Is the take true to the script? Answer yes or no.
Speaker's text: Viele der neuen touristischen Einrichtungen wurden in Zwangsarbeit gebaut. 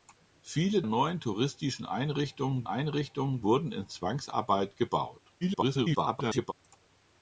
no